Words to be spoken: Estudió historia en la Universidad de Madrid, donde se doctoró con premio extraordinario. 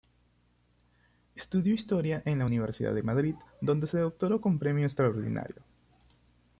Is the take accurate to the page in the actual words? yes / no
yes